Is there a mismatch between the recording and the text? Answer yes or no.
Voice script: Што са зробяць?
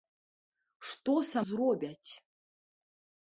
no